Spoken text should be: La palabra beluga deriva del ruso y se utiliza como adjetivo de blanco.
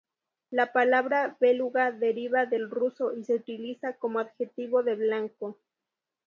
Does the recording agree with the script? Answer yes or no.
yes